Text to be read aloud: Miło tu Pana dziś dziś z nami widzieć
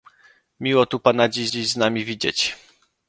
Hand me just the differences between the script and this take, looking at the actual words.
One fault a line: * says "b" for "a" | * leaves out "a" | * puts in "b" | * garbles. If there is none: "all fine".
all fine